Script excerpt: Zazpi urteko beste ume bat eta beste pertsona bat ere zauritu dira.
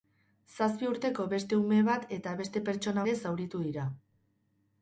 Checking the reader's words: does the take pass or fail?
fail